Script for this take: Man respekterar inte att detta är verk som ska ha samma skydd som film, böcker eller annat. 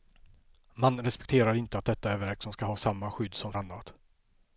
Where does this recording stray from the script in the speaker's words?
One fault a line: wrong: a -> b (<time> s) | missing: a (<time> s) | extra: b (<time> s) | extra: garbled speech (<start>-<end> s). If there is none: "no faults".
missing: film böcker eller (3.5 s)